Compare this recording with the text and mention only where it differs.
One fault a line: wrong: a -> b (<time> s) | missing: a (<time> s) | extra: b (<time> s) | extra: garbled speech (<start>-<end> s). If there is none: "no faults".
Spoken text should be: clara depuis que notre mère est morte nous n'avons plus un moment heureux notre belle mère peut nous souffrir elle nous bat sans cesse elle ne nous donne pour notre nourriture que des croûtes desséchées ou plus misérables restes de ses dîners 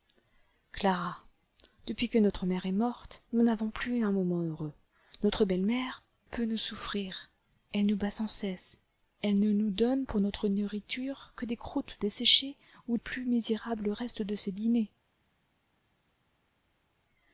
no faults